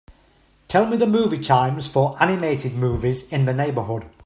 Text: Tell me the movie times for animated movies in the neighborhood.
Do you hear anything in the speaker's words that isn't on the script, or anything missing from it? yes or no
no